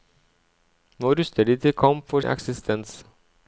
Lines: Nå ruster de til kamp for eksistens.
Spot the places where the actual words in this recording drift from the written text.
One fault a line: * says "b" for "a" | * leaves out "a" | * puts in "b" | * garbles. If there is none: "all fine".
all fine